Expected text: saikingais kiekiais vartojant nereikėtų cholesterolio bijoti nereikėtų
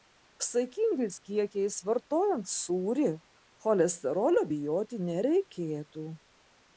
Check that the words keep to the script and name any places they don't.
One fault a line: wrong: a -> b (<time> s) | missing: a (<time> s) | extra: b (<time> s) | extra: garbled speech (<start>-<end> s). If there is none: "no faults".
wrong: nereikėtų -> sūrį (2.5 s)